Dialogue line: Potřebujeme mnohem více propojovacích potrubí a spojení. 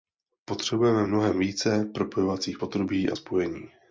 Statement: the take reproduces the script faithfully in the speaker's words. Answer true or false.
true